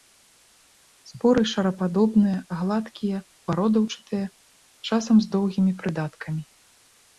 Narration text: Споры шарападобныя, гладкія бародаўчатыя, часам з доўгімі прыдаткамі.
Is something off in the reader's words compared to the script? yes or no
no